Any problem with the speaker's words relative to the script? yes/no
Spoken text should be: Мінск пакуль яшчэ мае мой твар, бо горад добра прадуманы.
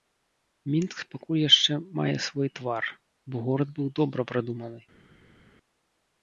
yes